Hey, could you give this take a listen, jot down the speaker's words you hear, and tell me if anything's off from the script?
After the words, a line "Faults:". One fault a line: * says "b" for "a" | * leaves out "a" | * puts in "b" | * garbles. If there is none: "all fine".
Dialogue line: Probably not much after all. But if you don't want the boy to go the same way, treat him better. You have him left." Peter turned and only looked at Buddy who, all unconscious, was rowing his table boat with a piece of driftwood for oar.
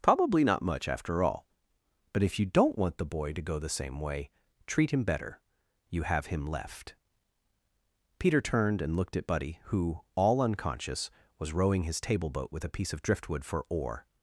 Probably not much after all. But if you don't want the boy to go the same way, treat him better. You have him left." Peter turned and looked at Buddy who, all unconscious, was rowing his table boat with a piece of driftwood for oar.
Faults:
* leaves out "only"